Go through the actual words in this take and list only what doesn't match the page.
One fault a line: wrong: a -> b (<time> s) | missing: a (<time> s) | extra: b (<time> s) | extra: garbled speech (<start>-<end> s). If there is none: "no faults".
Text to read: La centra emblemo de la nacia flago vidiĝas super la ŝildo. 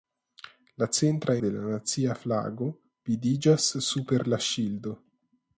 missing: emblemo (1.3 s)